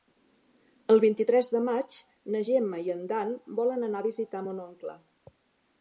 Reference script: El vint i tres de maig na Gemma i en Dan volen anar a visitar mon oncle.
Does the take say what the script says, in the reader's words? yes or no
yes